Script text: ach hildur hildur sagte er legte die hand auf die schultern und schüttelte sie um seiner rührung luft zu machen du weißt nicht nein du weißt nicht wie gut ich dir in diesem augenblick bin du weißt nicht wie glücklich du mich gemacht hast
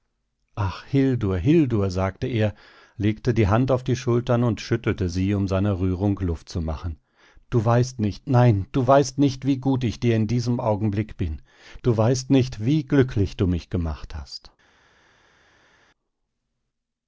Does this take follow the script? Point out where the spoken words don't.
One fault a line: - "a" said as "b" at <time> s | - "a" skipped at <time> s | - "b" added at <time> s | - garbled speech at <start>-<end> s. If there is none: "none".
none